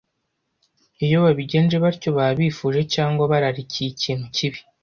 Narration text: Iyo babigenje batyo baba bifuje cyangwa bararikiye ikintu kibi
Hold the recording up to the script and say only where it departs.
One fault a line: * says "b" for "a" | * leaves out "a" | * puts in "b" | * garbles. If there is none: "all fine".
all fine